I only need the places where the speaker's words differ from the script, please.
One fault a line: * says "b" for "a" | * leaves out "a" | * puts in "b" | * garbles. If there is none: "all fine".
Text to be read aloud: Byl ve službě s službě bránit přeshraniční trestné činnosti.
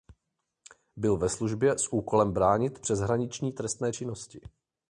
* says "úkolem" for "službě"